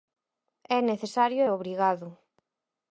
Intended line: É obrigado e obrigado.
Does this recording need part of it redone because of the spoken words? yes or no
yes